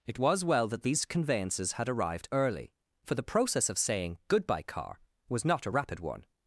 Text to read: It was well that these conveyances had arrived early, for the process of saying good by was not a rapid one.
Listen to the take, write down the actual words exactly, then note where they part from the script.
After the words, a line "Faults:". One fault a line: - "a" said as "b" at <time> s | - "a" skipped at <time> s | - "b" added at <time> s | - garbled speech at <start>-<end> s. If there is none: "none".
It was well that these conveyances had arrived early, for the process of saying goodbye car was not a rapid one.
Faults:
- "good by" said as "goodbye car" at 4.3 s